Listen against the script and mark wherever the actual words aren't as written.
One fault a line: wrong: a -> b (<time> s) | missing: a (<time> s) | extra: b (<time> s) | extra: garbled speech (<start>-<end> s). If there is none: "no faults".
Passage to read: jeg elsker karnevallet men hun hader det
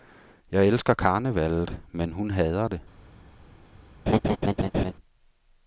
no faults